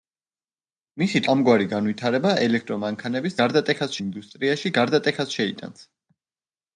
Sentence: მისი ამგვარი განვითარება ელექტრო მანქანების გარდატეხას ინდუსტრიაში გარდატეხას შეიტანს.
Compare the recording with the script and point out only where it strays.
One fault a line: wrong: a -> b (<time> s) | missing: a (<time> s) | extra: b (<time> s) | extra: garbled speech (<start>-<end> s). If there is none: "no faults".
no faults